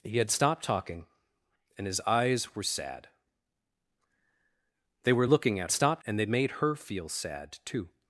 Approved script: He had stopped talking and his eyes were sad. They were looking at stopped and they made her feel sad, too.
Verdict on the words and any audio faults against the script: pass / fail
pass